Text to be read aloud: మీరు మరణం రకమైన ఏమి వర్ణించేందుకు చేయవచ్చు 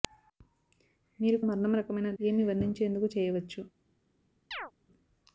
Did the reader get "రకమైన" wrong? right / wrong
right